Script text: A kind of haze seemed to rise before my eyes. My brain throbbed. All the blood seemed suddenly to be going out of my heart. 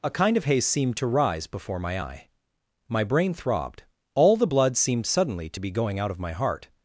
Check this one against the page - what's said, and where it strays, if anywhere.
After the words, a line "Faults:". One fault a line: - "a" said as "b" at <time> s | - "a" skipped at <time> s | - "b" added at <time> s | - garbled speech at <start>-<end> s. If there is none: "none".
A kind of haze seemed to rise before my eye. My brain throbbed. All the blood seemed suddenly to be going out of my heart.
Faults:
- "eyes" said as "eye" at 2.0 s